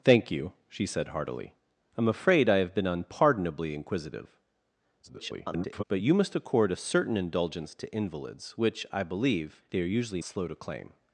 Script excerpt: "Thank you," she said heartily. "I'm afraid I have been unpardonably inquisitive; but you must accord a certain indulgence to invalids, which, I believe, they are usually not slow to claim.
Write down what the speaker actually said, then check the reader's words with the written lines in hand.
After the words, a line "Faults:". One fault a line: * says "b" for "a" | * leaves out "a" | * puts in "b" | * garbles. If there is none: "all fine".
"Thank you," she said heartily. "I'm afraid I have been unpardonably inquisitive; [garbled] but you must accord a certain indulgence to invalids, which, I believe, they are usually slow to claim.
Faults:
* garbles
* leaves out "not"